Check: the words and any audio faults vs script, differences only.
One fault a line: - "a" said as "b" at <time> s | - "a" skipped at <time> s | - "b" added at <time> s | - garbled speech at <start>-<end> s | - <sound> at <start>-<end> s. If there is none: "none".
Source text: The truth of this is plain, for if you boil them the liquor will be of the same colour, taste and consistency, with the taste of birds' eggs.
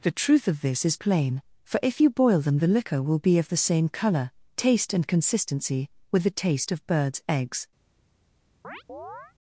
- chirp at 8.6-9.3 s